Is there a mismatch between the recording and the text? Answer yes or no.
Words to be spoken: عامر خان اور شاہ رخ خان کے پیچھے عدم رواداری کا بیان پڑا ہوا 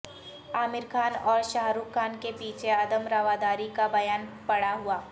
no